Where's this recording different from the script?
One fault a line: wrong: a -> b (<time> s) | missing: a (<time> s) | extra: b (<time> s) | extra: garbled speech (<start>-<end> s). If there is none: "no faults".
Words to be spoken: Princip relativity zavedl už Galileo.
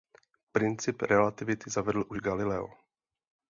no faults